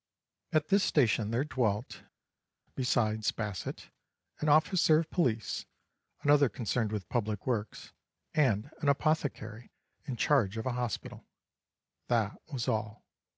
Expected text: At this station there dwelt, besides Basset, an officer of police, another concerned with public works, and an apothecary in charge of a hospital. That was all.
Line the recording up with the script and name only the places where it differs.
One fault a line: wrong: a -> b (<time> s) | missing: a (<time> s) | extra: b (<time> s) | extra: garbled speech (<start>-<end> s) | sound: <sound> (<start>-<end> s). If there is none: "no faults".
no faults